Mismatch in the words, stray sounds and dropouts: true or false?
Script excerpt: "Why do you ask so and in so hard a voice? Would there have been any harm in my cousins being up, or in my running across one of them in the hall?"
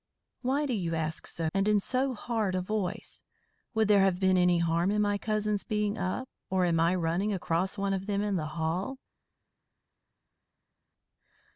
false